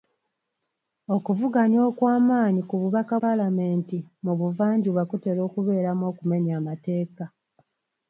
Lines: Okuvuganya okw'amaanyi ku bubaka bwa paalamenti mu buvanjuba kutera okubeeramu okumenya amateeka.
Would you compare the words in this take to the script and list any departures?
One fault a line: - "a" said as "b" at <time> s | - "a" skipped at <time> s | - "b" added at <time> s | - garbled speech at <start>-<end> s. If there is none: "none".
- "bwa" skipped at 3.1 s